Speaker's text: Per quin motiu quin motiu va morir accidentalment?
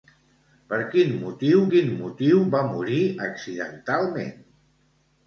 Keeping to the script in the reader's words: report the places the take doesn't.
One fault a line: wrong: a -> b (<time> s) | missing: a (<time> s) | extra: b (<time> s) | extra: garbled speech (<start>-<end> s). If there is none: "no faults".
no faults